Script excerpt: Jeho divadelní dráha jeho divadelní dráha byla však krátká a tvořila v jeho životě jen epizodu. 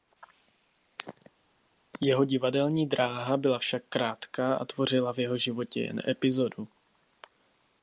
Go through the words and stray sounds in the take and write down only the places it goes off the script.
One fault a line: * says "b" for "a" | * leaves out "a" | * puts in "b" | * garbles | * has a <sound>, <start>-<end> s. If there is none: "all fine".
* leaves out "jeho divadelní dráha"